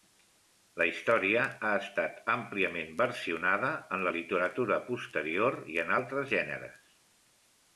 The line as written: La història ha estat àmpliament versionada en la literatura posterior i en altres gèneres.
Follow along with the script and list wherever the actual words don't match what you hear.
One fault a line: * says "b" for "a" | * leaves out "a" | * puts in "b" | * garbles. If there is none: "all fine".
all fine